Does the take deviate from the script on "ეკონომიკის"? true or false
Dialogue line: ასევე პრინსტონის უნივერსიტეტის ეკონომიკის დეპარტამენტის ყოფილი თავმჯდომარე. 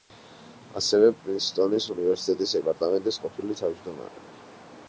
true